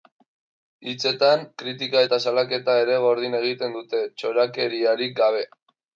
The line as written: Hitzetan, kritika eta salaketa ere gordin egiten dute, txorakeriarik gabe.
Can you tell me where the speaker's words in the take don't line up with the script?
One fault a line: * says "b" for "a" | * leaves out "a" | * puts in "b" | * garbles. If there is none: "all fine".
all fine